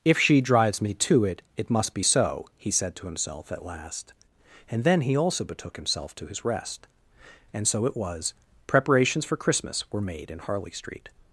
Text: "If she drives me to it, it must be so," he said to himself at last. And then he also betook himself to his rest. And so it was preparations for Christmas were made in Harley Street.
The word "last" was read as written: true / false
true